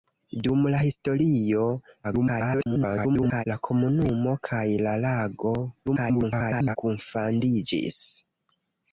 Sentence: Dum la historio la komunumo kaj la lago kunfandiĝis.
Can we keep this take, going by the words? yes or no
no